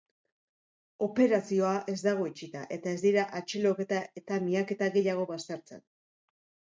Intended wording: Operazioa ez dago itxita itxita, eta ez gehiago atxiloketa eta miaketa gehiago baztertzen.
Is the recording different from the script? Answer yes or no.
yes